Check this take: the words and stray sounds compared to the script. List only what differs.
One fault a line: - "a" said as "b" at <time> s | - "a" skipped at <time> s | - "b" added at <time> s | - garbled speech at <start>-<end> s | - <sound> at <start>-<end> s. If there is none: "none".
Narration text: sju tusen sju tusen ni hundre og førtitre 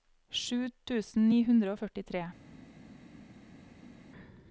- "sju tusen" skipped at 1.3 s